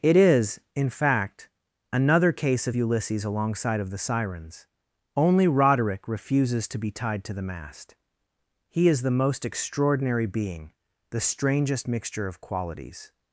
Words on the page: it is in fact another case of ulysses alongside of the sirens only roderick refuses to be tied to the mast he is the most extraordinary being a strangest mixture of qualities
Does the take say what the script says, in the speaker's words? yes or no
no